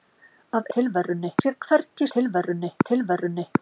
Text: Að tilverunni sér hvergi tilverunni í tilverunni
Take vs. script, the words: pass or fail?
pass